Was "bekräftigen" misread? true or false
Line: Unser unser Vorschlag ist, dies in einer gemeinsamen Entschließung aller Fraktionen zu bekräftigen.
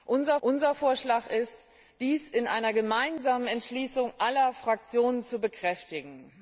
false